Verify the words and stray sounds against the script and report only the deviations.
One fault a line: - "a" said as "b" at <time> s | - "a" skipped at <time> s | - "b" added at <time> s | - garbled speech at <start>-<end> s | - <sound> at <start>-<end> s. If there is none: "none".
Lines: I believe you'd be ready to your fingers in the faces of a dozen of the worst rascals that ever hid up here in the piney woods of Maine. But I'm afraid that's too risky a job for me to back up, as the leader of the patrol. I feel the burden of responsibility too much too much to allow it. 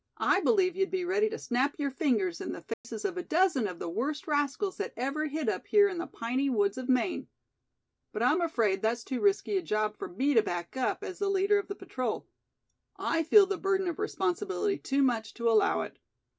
- "snap" added at 1.4 s
- dropout at 2.7-2.8 s
- "too much" skipped at 15.3 s